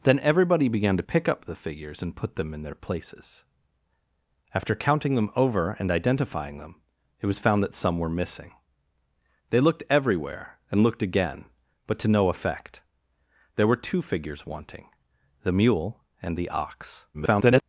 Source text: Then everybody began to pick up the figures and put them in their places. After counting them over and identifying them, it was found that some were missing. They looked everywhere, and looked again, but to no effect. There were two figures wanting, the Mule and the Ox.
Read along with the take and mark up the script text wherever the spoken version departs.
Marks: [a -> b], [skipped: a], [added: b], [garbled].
Then everybody began to pick up the figures and put them in their places. After counting them over and identifying them, it was found that some were missing. They looked everywhere, and looked again, but to no effect. There were two figures wanting, the Mule and the Ox. [garbled]